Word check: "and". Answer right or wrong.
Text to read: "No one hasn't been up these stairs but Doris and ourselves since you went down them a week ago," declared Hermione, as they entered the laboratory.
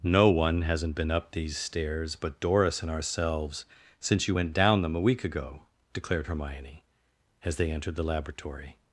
right